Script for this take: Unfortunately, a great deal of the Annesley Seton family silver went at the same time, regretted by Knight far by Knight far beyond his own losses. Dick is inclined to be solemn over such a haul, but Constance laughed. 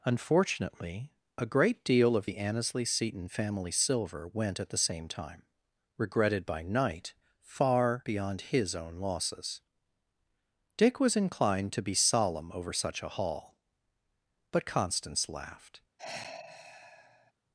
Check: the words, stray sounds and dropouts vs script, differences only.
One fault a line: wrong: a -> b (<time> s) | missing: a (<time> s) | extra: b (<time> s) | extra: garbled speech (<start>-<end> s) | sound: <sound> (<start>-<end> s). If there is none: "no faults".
missing: by Knight far (8.0 s)
wrong: is -> was (11.0 s)
sound: sigh (16.0-17.3 s)